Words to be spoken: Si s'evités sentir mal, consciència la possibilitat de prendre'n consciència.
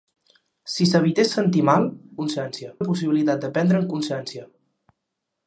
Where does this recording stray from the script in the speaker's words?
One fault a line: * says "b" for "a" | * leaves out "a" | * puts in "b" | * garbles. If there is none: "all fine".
all fine